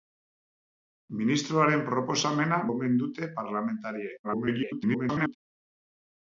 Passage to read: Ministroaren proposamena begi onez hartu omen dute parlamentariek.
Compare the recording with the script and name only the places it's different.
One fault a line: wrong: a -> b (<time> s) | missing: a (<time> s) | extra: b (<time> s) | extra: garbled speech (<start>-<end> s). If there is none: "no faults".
missing: begi onez hartu (2.6 s)
extra: garbled speech (4.2-5.4 s)